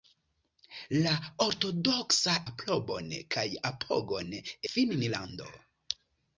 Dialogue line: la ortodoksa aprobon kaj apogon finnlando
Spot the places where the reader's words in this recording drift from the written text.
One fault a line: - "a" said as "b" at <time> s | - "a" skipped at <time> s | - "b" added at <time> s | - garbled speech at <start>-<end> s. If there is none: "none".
none